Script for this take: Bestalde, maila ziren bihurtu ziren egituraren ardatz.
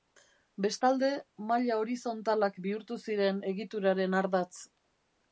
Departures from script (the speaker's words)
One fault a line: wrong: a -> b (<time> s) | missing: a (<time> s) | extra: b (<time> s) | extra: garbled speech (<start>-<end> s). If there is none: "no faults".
wrong: ziren -> horizontalak (1.8 s)